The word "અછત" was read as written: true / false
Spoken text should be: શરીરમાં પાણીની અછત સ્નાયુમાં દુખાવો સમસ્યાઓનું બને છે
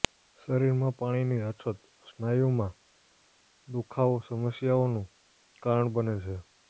true